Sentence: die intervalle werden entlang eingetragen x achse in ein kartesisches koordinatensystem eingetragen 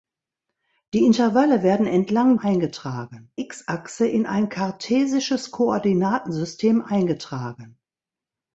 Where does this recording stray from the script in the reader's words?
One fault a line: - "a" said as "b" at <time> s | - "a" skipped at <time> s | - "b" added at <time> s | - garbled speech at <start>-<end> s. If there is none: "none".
none